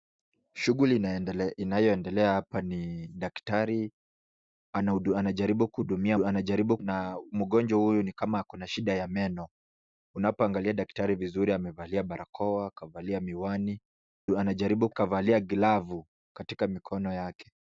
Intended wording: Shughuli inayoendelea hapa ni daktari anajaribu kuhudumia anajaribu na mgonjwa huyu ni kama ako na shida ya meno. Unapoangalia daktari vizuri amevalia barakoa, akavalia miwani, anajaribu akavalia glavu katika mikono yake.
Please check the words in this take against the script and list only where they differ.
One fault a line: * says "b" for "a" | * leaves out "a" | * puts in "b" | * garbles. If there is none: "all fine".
all fine